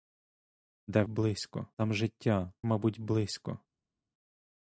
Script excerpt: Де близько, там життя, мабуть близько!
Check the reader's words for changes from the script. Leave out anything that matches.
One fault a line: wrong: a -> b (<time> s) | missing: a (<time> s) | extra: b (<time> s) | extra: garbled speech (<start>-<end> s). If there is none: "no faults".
no faults